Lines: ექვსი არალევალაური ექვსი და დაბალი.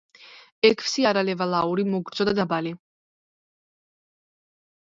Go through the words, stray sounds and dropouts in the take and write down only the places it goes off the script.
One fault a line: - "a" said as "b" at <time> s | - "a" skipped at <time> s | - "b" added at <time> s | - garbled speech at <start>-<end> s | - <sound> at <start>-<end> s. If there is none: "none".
- "ექვსი" said as "მოგრძო" at 1.9 s